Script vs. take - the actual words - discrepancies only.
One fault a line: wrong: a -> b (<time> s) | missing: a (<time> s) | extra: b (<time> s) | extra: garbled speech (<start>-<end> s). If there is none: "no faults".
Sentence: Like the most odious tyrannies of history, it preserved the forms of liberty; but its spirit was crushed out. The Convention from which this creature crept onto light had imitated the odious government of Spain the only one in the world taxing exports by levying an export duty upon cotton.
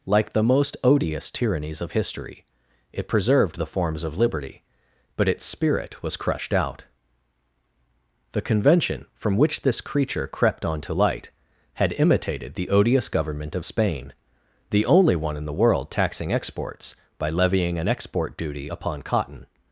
no faults